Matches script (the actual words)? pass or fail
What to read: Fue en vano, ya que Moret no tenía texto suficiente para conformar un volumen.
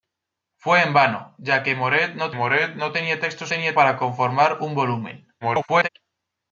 fail